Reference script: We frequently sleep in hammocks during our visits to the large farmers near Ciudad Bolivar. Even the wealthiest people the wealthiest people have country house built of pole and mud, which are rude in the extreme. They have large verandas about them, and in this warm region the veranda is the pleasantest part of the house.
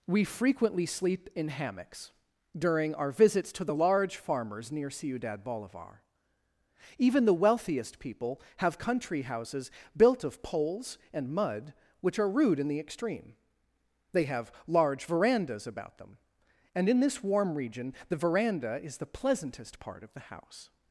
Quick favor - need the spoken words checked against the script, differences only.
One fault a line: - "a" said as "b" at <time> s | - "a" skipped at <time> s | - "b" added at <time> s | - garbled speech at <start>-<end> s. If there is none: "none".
- "the wealthiest people" skipped at 8.4 s
- "house" said as "houses" at 9.2 s
- "pole" said as "poles" at 10.4 s